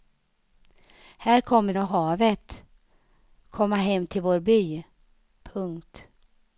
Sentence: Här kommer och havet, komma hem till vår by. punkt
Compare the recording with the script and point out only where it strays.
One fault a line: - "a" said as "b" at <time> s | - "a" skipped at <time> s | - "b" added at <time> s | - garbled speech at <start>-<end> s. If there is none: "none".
none